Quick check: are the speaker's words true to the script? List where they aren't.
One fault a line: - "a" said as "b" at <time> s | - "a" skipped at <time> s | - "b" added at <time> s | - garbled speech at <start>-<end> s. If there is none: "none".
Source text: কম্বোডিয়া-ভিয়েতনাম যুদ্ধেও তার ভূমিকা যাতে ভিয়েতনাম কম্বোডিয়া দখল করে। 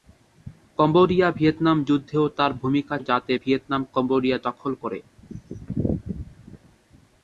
none